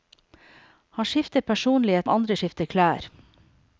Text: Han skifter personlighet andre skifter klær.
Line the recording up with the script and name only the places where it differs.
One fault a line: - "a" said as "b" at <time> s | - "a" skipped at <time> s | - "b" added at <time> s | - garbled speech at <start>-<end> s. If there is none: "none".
none